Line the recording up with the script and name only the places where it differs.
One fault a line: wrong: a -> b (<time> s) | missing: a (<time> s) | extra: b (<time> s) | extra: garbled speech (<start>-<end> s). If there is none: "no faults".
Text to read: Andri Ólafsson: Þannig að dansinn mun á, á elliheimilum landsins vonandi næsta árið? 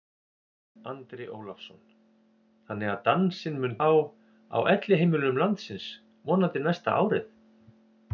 no faults